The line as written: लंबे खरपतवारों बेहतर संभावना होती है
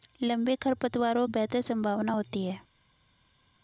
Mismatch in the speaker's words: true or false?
false